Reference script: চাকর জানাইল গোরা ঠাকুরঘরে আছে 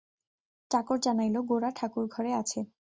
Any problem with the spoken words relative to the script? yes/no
no